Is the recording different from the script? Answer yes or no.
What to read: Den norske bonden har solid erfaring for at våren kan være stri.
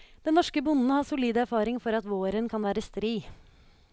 no